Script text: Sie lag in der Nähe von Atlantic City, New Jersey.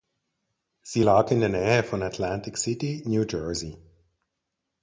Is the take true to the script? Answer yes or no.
yes